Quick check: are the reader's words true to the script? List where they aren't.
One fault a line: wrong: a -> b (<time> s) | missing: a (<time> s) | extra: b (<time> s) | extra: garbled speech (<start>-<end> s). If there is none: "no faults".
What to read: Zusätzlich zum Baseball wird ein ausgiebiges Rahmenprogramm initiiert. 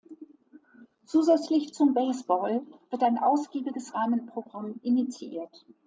no faults